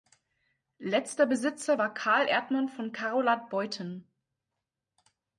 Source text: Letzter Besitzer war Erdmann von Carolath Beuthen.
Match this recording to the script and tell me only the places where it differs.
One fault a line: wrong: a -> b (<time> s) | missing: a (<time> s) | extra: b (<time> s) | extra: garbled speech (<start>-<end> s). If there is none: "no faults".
extra: Carl (1.9 s)